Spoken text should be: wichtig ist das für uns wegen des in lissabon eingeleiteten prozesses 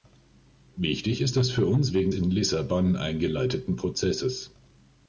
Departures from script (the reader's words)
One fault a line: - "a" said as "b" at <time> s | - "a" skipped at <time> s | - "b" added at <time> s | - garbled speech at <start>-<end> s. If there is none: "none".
- "des" skipped at 2.1 s